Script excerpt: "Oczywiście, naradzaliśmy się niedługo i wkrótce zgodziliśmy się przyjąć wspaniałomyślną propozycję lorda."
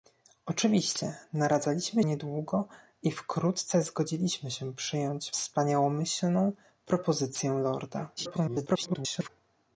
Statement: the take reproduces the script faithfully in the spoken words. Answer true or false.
false